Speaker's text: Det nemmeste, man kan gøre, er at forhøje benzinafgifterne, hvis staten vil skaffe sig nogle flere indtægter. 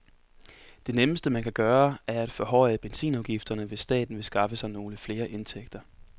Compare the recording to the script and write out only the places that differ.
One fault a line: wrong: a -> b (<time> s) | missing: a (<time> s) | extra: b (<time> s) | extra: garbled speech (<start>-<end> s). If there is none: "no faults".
no faults